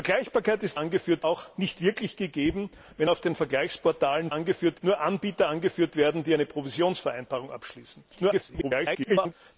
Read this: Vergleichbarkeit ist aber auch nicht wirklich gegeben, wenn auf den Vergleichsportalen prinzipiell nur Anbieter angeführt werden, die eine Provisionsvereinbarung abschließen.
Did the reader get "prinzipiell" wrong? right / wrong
wrong